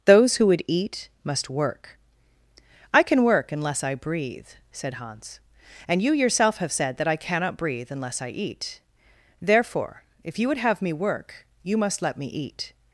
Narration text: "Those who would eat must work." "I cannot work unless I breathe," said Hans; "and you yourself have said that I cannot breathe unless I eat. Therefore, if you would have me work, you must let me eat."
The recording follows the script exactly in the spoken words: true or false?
false